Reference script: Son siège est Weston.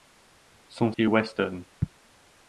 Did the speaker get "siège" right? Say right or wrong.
wrong